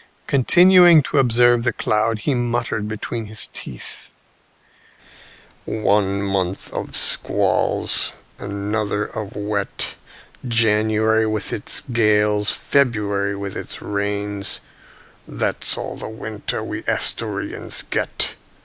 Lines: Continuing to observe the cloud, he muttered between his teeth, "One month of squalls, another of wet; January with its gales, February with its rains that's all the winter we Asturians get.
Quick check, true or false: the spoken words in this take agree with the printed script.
true